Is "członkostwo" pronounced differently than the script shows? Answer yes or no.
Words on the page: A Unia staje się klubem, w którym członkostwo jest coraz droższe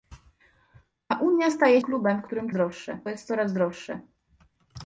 yes